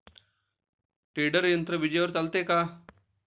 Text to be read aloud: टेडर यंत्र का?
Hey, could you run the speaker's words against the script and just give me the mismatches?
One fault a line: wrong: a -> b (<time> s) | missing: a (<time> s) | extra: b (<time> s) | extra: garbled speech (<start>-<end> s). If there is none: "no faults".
extra: विजेवर चालते (1.8 s)